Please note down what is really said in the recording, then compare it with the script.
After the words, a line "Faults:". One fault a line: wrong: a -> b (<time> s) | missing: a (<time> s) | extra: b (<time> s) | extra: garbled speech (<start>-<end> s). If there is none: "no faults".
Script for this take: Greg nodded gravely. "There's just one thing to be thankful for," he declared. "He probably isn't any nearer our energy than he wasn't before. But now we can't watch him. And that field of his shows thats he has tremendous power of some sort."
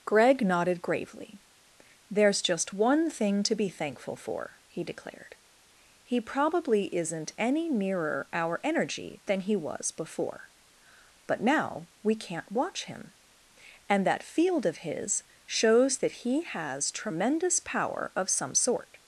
Greg nodded gravely. "There's just one thing to be thankful for," he declared. "He probably isn't any nearer our energy than he was before. But now we can't watch him. And that field of his shows that he has tremendous power of some sort."
Faults:
wrong: wasn't -> was (9.6 s)
wrong: thats -> that (16.0 s)